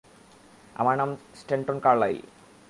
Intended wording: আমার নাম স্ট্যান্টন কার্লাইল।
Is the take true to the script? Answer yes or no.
yes